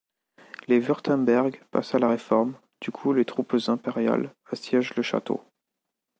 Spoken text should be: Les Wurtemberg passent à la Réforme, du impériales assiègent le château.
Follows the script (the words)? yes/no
no